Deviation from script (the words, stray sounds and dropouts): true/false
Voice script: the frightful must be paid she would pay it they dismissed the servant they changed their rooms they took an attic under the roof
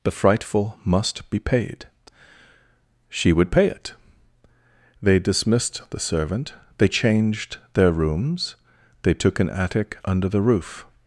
false